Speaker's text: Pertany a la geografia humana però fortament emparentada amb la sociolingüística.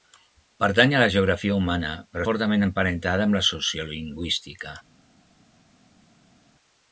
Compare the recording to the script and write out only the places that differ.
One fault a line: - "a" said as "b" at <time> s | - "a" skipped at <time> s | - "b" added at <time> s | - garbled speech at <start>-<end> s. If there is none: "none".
none